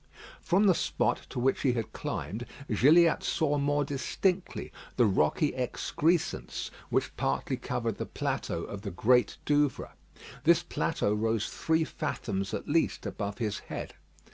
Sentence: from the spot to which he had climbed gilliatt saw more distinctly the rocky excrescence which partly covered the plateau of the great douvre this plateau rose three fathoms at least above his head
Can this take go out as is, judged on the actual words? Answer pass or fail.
pass